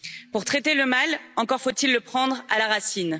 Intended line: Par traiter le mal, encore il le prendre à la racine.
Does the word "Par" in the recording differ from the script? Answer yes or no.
yes